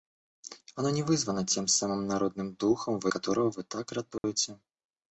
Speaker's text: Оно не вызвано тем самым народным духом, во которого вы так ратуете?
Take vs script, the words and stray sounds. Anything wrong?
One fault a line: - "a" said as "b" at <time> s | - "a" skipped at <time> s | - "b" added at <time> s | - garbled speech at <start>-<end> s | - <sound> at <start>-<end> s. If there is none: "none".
- dropout at 4.2-4.2 s